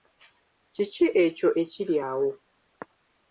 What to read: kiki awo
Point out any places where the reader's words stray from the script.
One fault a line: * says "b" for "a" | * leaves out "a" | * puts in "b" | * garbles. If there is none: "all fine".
* puts in "ekyo ekiri"